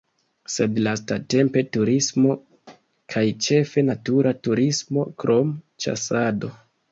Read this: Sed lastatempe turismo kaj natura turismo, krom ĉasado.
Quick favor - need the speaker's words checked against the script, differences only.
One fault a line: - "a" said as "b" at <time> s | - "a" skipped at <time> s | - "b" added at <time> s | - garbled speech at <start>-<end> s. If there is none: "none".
- "ĉefe" added at 3.5 s